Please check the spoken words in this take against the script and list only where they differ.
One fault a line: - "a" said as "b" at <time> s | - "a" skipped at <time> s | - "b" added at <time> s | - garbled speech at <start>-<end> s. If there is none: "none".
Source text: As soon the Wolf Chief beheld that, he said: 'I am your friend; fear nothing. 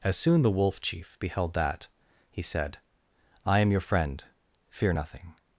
none